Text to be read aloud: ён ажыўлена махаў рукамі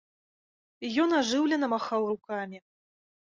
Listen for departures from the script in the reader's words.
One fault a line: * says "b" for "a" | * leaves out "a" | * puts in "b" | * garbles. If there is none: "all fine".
all fine